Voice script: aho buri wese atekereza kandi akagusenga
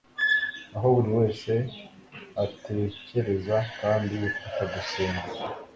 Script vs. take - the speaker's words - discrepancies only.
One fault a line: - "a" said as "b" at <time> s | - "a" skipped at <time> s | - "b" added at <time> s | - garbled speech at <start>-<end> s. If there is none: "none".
none